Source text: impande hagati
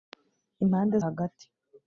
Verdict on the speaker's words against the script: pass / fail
pass